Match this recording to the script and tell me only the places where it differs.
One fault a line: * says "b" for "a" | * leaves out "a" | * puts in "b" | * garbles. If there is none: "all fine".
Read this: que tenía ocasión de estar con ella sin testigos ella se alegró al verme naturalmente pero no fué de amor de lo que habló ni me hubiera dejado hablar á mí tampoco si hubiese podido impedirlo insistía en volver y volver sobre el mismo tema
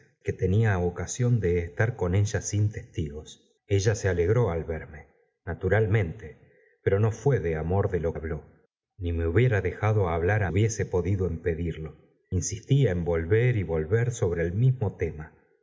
* leaves out "que"
* leaves out "mí tampoco si"